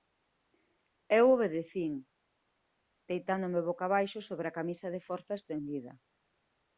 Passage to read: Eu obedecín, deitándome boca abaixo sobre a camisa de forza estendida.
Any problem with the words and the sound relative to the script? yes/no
no